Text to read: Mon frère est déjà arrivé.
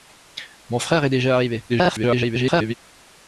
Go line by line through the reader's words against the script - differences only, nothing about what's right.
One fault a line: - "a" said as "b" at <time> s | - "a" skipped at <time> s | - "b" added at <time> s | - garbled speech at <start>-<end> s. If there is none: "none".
- garbled speech at 1.7-2.7 s